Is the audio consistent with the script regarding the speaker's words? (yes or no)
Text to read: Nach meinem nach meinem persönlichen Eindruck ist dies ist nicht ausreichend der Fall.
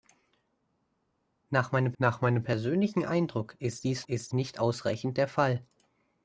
yes